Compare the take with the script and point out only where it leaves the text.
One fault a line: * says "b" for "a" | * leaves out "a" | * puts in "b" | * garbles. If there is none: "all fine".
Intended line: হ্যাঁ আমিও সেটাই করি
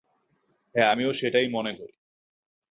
* puts in "মনে"